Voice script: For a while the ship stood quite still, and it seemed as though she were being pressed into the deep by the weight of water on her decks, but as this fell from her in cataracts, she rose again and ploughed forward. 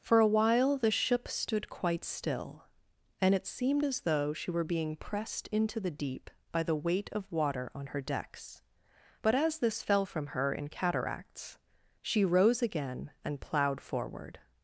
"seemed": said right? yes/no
yes